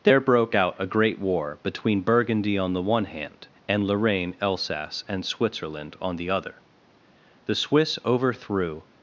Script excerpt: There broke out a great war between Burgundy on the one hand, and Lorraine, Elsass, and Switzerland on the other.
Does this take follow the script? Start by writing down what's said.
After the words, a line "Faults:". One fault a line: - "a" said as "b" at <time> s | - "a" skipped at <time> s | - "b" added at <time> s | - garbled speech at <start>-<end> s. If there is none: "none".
There broke out a great war between Burgundy on the one hand, and Lorraine, Elsass, and Switzerland on the other. The Swiss overthrew
Faults:
- "The Swiss overthrew" added at 7.4 s